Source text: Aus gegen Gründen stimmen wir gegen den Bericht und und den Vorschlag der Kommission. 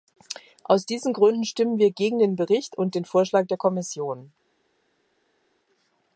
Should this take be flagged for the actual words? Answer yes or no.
yes